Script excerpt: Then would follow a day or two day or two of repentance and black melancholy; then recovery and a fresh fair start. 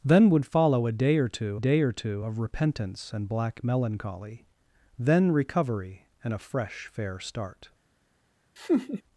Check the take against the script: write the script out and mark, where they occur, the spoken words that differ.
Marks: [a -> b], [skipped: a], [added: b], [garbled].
Then would follow a day or two day or two of repentance and black melancholy; then recovery and a fresh fair start.